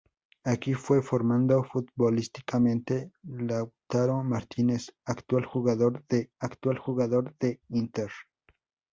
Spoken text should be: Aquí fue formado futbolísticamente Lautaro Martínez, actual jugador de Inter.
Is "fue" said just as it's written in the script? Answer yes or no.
yes